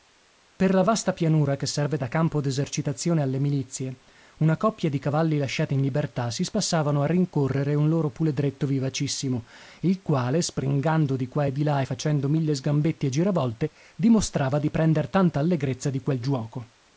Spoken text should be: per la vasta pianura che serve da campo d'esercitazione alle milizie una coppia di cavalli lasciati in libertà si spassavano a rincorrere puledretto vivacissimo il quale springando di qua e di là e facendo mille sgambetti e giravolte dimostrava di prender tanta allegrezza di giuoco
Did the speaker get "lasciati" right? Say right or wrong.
right